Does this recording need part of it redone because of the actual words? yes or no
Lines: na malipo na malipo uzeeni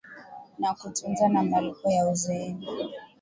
yes